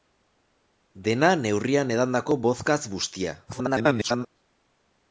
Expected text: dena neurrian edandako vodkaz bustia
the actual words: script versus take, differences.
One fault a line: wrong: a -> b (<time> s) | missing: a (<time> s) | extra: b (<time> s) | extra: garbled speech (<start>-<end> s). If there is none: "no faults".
extra: garbled speech (3.5-4.3 s)